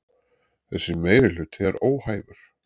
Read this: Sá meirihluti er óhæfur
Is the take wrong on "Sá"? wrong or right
wrong